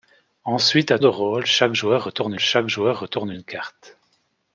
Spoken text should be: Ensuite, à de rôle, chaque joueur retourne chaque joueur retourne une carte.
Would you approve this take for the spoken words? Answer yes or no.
yes